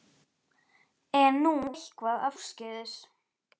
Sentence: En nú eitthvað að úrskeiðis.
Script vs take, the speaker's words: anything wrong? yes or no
no